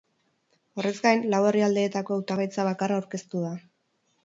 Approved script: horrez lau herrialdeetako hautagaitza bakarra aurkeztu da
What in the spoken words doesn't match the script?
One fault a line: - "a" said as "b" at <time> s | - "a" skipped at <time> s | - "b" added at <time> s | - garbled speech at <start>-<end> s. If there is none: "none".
- "gain" added at 1.1 s